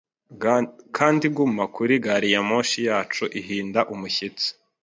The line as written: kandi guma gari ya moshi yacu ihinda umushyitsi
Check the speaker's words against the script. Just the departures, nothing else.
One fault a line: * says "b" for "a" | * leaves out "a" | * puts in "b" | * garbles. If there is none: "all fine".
* puts in "kuri"